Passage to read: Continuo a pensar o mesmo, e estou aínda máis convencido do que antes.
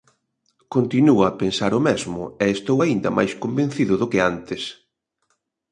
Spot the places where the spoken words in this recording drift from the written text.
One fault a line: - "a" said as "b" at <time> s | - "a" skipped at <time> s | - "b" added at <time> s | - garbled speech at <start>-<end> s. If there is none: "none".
none